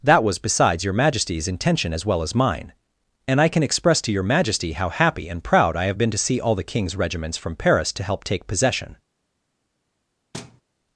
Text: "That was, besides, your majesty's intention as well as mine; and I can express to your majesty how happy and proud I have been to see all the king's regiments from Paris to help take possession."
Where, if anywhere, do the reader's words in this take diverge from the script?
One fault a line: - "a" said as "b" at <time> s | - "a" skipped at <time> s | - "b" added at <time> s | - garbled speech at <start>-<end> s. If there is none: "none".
none